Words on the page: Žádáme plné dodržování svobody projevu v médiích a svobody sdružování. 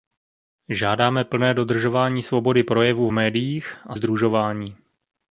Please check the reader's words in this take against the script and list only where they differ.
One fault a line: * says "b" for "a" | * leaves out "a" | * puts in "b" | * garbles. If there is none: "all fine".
* leaves out "svobody"